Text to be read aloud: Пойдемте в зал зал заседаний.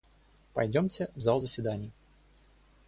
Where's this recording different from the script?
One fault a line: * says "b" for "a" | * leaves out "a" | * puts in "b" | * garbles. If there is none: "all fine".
* leaves out "зал"